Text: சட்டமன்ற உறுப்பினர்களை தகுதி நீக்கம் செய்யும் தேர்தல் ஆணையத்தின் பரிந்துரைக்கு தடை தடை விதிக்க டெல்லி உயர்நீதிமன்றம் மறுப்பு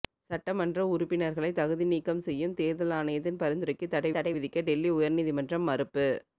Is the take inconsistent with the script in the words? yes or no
no